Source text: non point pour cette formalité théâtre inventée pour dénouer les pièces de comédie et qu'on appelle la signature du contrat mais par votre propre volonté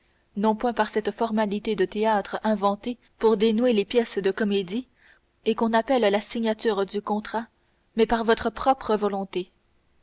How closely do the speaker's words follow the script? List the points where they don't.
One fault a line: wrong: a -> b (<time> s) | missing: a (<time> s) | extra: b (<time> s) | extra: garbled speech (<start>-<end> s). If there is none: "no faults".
wrong: pour -> par (0.7 s)
extra: de (1.8 s)